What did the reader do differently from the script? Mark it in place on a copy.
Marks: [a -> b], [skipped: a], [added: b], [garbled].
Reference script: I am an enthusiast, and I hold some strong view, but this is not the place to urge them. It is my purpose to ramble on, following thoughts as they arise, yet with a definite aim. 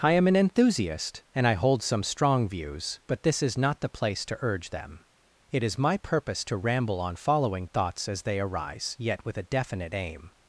I am an enthusiast, and I hold some strong [view, -> views] but this is not the place to urge them. It is my purpose to ramble on, following thoughts as they arise, yet with a definite aim.